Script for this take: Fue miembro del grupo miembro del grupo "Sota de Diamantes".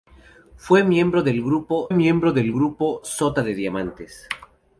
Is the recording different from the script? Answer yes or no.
no